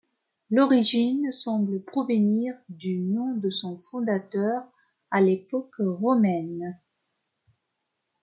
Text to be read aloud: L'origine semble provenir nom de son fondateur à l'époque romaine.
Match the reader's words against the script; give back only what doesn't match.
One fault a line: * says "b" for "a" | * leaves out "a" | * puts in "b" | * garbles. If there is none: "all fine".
* puts in "du"